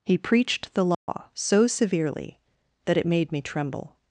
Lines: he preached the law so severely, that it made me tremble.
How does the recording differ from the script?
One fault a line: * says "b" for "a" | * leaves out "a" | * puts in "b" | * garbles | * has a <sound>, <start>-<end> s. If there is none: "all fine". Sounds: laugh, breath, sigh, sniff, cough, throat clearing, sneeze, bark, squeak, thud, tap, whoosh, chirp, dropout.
* has a dropout, 0.9-1.1 s